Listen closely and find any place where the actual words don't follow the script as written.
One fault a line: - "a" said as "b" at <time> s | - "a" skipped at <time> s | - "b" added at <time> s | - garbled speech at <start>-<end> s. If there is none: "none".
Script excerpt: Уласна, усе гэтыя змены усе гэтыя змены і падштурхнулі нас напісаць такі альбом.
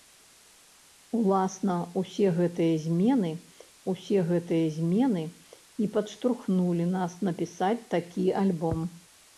none